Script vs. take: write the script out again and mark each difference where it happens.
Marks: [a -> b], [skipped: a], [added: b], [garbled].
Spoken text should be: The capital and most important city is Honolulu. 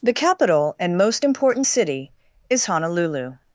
The capital and most important city is Honolulu.